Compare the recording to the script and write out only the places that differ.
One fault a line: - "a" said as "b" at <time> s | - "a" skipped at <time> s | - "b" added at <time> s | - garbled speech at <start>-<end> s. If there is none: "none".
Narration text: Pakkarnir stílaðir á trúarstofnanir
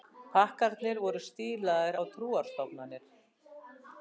- "voru" added at 1.0 s